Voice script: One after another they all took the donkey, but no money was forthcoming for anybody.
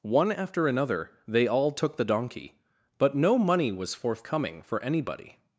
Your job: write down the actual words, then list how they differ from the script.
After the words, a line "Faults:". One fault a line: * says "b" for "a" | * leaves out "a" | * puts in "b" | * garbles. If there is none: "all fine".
One after another they all took the donkey, but no money was forthcoming for anybody.
Faults:
all fine